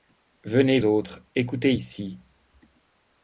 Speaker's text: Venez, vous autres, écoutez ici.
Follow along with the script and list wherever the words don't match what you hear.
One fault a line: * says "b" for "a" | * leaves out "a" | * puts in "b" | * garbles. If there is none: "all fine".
* leaves out "vous"